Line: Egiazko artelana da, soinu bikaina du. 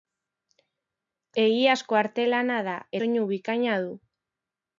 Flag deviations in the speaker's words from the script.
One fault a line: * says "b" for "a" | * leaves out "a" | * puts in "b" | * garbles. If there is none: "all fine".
all fine